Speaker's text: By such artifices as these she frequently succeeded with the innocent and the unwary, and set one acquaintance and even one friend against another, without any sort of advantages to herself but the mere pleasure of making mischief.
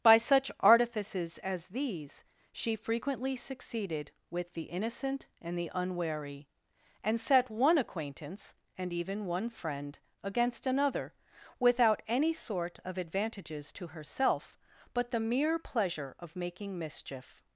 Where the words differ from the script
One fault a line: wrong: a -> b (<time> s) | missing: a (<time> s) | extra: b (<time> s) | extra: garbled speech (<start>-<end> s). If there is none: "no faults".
no faults